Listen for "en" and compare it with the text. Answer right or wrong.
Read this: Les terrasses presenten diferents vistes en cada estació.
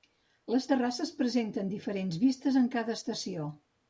right